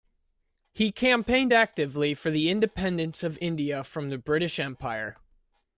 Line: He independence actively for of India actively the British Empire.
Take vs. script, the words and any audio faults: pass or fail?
fail